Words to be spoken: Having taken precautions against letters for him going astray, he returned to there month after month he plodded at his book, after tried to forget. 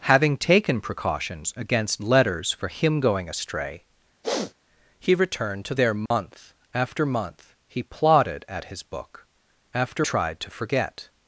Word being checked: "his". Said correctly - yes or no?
yes